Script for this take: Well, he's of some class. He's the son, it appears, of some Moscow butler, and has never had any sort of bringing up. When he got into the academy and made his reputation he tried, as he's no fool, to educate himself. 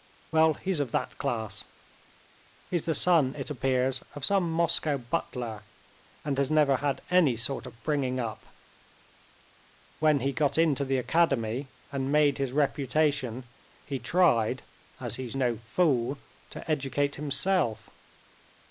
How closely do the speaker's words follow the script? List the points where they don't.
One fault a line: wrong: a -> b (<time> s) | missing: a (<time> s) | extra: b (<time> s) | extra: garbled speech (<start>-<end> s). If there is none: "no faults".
wrong: some -> that (0.9 s)